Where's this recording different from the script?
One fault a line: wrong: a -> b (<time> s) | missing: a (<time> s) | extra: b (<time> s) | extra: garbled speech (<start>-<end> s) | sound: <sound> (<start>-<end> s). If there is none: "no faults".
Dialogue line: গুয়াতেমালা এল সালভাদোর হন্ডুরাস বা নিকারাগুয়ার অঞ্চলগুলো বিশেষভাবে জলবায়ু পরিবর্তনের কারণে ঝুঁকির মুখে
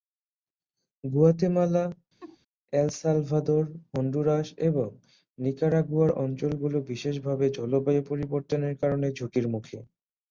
sound: laugh (2.2-2.4 s)
wrong: বা -> এবং (4.7 s)